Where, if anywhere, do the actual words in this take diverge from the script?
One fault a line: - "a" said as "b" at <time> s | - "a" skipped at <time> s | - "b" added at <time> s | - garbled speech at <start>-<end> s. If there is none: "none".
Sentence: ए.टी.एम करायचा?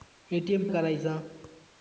none